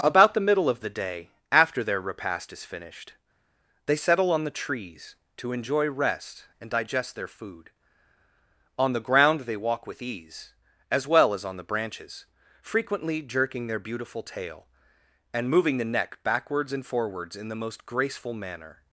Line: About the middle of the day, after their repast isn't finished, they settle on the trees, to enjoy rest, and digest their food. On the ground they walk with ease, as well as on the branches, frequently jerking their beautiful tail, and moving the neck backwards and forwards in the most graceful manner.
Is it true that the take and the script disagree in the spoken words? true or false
true